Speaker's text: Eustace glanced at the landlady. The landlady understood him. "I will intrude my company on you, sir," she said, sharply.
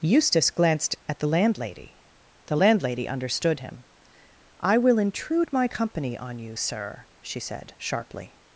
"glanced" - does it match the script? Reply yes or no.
yes